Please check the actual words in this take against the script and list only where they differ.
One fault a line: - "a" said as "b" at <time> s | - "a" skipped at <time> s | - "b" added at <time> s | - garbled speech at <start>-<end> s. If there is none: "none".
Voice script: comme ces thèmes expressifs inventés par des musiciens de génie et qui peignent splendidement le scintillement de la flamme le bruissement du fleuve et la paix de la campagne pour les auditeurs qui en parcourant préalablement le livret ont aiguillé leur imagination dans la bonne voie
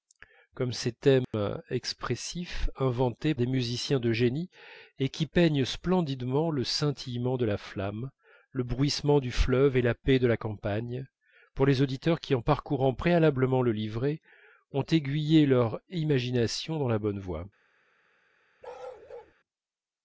- "par" skipped at 3.4 s